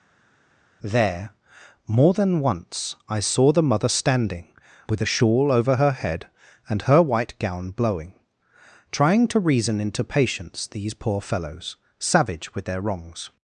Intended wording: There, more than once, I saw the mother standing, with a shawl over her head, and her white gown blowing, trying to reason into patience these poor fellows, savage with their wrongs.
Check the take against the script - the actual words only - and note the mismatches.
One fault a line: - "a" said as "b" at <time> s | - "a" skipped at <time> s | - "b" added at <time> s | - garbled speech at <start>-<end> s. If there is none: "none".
none